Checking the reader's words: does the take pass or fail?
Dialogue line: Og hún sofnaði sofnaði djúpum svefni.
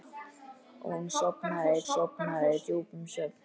pass